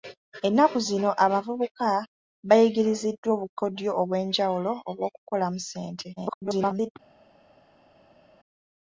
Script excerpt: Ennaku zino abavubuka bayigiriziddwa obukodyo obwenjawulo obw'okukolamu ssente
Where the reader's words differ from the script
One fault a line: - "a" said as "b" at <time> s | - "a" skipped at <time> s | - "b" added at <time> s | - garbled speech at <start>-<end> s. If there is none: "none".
- garbled speech at 6.2-6.9 s